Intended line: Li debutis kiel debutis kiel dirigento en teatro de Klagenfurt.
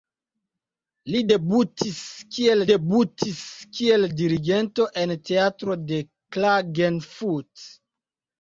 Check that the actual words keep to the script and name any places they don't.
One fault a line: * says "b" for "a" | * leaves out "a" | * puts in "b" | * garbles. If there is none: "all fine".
all fine